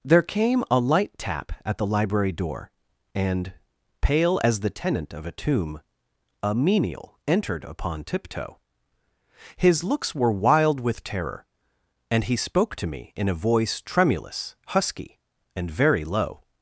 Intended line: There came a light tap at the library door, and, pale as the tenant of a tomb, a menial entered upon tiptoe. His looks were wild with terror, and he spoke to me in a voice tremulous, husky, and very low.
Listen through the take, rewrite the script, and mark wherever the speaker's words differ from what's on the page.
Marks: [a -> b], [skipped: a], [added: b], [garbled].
There came a light tap at the library door, and, pale as the tenant of a tomb, a menial entered upon tiptoe. His looks were wild with terror, and he spoke to me in a voice tremulous, husky, and very low.